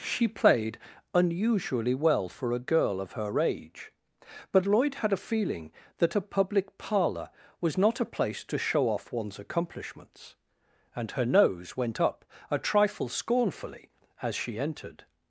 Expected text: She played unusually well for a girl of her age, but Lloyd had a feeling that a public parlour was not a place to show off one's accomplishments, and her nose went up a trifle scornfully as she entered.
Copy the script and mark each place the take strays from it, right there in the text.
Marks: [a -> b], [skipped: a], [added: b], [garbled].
She played unusually well for a girl of her age, but Lloyd had a feeling that a public parlour was not a place to show off one's accomplishments, and her nose went up a trifle scornfully as she entered.